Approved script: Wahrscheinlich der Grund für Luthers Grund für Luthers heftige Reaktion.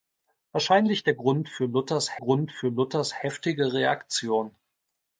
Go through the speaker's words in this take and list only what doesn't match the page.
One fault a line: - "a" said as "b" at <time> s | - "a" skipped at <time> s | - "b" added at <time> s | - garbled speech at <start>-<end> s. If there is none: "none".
none